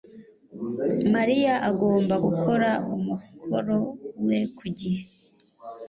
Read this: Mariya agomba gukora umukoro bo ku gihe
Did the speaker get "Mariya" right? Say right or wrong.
right